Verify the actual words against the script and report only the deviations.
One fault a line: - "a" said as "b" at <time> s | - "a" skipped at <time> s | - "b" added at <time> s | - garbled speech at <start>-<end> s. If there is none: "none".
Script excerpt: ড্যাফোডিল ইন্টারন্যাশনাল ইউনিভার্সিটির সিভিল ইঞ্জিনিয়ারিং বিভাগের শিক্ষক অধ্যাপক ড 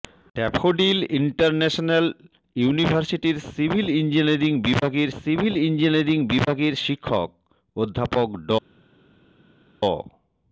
- "সিভিল ইঞ্জিনিয়ারিং বিভাগের" added at 5.2 s